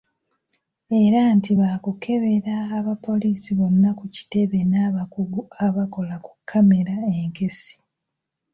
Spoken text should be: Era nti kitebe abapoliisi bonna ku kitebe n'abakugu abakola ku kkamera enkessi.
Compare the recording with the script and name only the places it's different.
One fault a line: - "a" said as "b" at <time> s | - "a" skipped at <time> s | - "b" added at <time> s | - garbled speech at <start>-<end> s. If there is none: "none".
- "kitebe" said as "baakukebera" at 1.6 s